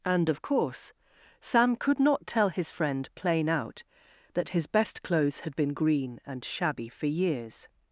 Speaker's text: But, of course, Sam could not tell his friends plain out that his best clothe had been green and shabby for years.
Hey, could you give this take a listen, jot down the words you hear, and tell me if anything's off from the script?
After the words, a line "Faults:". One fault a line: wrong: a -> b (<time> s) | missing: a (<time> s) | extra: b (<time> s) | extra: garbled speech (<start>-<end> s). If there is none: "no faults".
And, of course, Sam could not tell his friend plain out that his best clothes had been green and shabby for years.
Faults:
wrong: But -> And (0.0 s)
wrong: friends -> friend (2.7 s)
wrong: clothe -> clothes (5.0 s)